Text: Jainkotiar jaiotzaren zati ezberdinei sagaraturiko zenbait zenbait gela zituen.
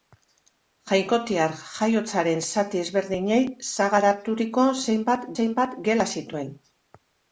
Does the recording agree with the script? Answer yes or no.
yes